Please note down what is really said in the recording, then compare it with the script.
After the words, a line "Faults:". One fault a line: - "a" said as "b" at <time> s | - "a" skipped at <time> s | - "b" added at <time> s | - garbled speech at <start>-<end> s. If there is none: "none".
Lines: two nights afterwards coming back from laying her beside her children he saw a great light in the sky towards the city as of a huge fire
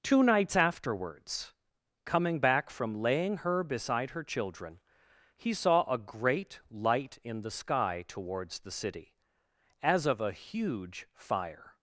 two nights afterwards coming back from laying her beside her children he saw a great light in the sky towards the city as of a huge fire
Faults:
none